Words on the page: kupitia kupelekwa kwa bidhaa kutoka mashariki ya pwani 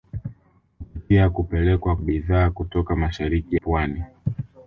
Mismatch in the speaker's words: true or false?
true